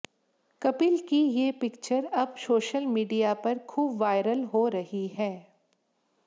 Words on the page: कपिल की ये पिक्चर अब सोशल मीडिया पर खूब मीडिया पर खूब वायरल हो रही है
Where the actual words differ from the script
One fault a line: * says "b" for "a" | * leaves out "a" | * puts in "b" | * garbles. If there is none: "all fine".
* leaves out "मीडिया पर खूब"